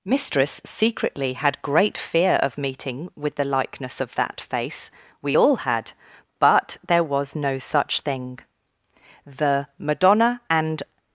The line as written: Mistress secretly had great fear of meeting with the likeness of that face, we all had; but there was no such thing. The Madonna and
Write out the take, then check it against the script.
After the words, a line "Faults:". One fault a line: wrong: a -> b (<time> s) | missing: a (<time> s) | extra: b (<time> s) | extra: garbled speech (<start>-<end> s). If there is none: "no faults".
Mistress secretly had great fear of meeting with the likeness of that face, we all had; but there was no such thing. The Madonna and
Faults:
no faults